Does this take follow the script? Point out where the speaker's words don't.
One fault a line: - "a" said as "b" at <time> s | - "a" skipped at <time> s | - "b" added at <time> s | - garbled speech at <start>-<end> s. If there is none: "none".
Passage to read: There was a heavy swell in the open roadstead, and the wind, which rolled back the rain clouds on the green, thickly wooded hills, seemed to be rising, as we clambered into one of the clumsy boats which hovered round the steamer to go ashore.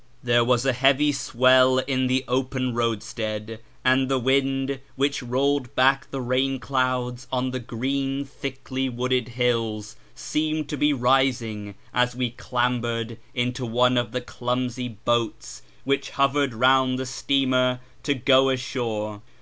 none